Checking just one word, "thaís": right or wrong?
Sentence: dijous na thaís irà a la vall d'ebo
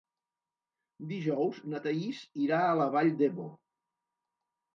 right